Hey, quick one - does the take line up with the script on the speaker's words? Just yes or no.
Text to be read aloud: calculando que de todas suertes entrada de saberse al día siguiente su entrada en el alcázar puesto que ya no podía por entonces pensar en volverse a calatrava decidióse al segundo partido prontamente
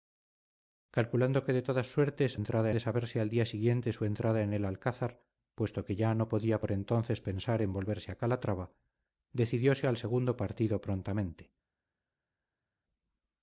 yes